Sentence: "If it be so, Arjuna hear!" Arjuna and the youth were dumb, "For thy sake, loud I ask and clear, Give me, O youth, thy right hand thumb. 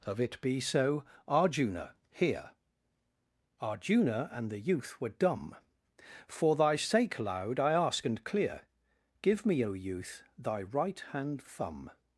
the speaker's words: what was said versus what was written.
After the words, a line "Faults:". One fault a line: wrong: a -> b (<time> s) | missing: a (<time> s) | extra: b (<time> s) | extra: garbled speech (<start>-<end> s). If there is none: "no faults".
"Of it be so, Arjuna hear!" Arjuna and the youth were dumb, "For thy sake, loud I ask and clear, Give me, O youth, thy right hand thumb.
Faults:
wrong: If -> Of (0.0 s)